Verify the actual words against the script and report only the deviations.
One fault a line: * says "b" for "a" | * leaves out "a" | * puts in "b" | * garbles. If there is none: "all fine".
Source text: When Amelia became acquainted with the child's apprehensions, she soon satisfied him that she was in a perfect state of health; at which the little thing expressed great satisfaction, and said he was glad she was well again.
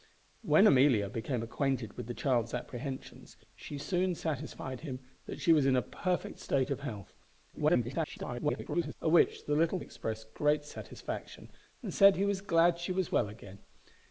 * garbles
* leaves out "thing"